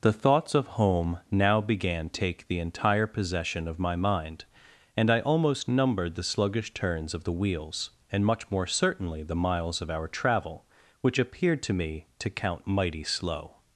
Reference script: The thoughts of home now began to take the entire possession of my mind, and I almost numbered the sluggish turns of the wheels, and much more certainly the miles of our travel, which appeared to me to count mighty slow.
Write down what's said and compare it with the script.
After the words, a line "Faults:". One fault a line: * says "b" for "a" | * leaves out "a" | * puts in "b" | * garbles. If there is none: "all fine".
The thoughts of home now began take the entire possession of my mind, and I almost numbered the sluggish turns of the wheels, and much more certainly the miles of our travel, which appeared to me to count mighty slow.
Faults:
* leaves out "to"